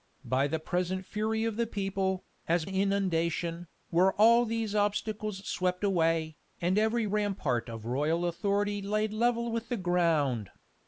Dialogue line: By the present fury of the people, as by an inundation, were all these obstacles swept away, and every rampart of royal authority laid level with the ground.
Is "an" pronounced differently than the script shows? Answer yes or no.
yes